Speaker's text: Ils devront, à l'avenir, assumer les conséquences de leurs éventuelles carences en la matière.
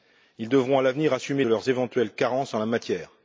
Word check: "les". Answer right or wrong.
wrong